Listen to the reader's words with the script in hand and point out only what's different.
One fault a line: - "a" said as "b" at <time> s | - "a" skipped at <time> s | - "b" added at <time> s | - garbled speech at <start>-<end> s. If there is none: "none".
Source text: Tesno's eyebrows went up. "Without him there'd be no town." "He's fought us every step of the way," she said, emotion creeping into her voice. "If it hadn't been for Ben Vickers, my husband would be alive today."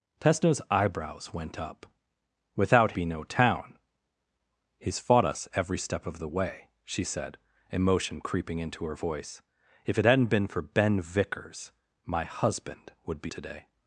- "him there'd" skipped at 2.9 s
- "alive" skipped at 13.3 s